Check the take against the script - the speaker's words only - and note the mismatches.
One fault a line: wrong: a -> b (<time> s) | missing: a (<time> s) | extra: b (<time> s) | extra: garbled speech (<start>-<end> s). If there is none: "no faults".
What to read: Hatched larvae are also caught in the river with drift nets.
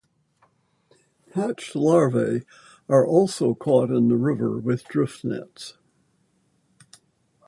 no faults